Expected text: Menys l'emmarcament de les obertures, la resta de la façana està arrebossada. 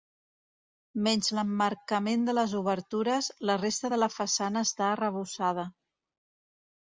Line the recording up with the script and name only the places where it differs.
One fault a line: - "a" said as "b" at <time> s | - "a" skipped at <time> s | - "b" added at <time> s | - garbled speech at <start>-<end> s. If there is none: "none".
none